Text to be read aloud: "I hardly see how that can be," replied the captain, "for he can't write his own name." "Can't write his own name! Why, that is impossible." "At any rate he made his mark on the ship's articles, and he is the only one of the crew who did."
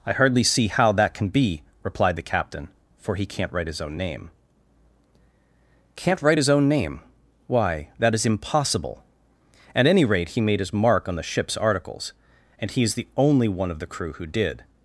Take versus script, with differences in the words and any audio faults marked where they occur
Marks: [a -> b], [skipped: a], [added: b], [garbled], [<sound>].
"I hardly see how that can be," replied the captain, "for he can't write his own name." "Can't write his own name! Why, that is impossible." "At any rate he made his mark on the ship's articles, and he is the only one of the crew who did."